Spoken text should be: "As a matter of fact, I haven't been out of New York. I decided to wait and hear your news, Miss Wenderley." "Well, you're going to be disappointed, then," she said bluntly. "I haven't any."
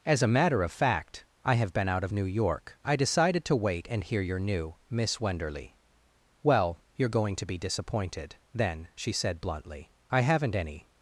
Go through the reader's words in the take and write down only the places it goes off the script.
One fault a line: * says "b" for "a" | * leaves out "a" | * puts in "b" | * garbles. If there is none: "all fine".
* says "have" for "haven't"
* says "new" for "news"